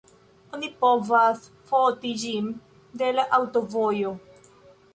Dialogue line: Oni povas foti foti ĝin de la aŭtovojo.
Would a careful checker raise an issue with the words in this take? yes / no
yes